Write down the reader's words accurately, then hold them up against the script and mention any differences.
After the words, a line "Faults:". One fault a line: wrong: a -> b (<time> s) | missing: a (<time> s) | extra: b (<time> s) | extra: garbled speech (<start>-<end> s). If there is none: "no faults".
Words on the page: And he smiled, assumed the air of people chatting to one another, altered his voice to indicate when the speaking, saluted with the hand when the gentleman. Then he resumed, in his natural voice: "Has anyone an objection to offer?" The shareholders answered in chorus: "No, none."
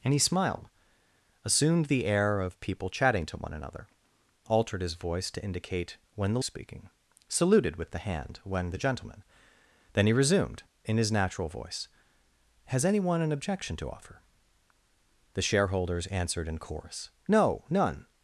And he smiled, assumed the air of people chatting to one another, altered his voice to indicate when the speaking, saluted with the hand when the gentleman. Then he resumed, in his natural voice: "Has anyone an objection to offer?" The shareholders answered in chorus: "No, none."
Faults:
no faults